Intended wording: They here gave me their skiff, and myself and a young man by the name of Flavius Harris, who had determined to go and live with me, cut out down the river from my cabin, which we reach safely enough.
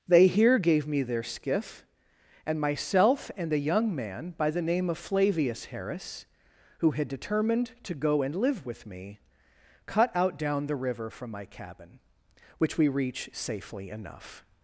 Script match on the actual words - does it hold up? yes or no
yes